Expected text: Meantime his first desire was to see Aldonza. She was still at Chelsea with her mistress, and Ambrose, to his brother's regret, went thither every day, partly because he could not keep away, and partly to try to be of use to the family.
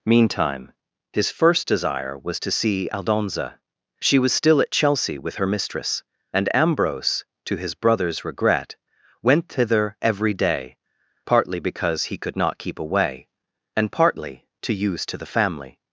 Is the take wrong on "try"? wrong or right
wrong